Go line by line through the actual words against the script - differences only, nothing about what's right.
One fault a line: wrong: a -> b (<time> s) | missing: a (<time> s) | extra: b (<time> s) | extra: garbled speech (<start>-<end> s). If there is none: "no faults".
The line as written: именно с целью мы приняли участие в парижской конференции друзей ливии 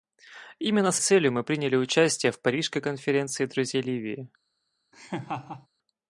no faults